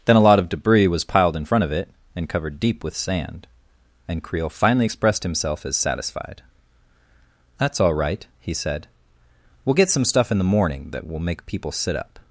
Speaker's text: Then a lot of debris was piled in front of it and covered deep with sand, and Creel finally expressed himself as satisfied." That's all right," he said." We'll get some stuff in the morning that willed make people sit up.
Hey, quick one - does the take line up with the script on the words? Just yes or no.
no